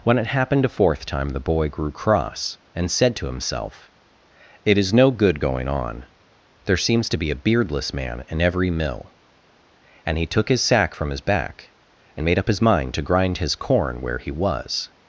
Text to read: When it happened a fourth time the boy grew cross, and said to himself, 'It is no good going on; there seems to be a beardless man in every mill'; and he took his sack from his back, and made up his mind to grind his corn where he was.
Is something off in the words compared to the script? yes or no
no